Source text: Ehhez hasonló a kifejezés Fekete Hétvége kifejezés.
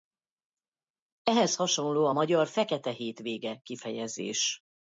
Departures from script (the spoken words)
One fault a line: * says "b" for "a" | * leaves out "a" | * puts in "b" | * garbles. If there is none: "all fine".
* says "magyar" for "kifejezés"